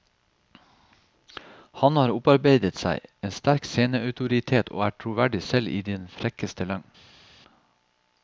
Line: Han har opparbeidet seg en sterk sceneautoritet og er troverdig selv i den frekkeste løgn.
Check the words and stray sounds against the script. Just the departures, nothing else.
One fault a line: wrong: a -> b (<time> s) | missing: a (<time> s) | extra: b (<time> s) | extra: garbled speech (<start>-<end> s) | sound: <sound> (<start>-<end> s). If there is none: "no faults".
no faults